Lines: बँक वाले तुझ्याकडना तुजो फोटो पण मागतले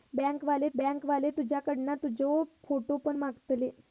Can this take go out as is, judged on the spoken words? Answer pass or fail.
fail